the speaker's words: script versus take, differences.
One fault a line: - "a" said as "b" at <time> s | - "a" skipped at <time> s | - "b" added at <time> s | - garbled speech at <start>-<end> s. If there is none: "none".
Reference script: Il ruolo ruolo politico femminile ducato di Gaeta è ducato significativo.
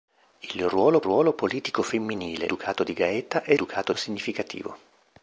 none